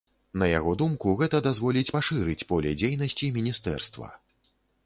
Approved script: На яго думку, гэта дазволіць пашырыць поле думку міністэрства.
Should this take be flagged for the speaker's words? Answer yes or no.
yes